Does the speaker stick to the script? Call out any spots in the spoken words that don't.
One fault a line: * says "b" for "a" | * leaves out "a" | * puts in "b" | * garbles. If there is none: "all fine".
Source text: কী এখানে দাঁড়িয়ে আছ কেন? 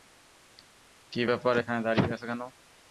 * puts in "ব্যাপার"